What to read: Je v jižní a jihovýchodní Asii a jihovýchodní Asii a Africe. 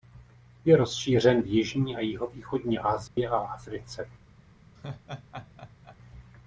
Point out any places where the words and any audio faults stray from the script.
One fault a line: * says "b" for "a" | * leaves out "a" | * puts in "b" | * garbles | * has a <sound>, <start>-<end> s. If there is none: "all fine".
* puts in "rozšířen"
* has a dropout, 3.1-3.2 s
* leaves out "jihovýchodní Asii a"
* has a laugh, 4.8-6.0 s